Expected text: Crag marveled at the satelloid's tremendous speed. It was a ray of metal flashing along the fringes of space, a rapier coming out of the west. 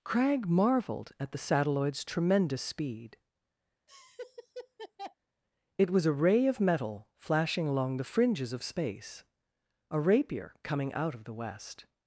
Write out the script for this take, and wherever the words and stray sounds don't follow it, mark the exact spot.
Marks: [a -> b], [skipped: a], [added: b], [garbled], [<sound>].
Crag marveled at the satelloid's tremendous speed. [laugh] It was a ray of metal flashing along the fringes of space, a rapier coming out of the west.